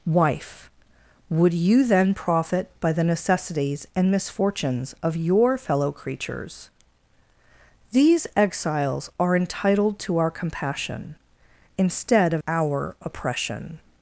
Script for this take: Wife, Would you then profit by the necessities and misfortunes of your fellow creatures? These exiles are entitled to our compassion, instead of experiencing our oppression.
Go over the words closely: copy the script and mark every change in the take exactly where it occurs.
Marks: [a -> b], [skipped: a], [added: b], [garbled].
Wife, Would you then profit by the necessities and misfortunes of your fellow creatures? These exiles are entitled to our compassion, instead of [skipped: experiencing] our oppression.